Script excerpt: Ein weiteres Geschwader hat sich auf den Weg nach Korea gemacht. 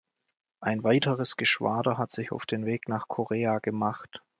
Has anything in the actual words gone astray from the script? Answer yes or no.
no